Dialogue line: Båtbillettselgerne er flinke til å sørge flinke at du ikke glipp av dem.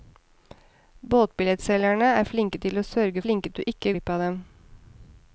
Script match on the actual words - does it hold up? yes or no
yes